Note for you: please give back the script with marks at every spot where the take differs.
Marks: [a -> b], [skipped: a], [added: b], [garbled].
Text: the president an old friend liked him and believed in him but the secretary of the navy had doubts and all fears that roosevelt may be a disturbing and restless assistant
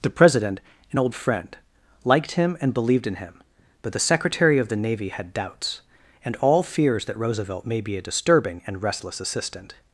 the president an old friend liked him and believed in him but the secretary of the navy had doubts and all fears that roosevelt may be a disturbing and restless assistant